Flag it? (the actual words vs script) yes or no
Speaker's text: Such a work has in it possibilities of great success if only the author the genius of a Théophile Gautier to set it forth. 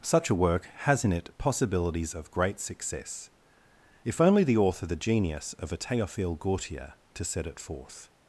no